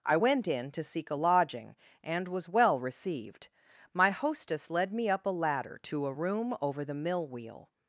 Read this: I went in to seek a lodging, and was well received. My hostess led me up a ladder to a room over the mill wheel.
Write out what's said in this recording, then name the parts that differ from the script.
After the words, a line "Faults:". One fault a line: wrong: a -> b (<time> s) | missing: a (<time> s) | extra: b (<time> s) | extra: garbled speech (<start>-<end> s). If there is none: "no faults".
I went in to seek a lodging, and was well received. My hostess led me up a ladder to a room over the mill wheel.
Faults:
no faults